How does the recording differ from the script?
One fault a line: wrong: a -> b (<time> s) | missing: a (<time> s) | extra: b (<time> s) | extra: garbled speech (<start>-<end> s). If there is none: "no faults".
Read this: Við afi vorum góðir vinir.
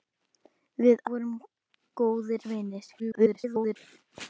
missing: afi (1.0 s)
extra: garbled speech (3.0-3.8 s)